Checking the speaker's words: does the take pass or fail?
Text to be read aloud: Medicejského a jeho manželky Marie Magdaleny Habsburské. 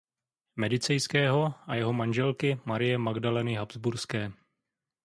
pass